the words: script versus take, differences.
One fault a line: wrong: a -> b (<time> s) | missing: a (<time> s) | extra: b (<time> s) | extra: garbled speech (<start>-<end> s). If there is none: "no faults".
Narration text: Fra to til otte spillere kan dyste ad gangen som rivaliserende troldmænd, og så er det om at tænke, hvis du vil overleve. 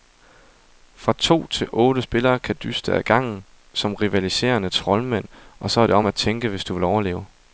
no faults